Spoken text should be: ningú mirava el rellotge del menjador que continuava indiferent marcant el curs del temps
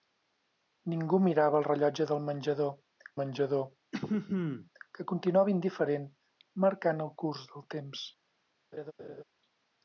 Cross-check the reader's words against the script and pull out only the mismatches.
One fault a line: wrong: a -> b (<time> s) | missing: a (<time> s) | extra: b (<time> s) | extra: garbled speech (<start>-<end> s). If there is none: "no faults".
extra: menjador (3.2 s)